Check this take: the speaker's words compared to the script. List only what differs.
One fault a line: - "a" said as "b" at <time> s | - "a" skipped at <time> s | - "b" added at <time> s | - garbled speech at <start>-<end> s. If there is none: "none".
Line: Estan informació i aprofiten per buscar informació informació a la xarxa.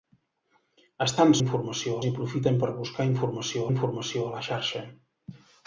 none